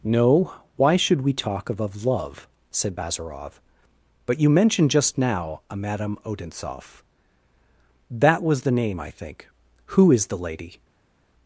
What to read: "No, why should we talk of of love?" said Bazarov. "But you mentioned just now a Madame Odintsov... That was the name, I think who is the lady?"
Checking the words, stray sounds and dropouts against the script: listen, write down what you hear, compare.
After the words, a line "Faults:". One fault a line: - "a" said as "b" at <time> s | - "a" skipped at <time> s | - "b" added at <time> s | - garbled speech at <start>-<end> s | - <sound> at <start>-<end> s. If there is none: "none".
"No, why should we talk of of love?" said Bazarov. "But you mentioned just now a Madame Odintsov... That was the name, I think who is the lady?"
Faults:
none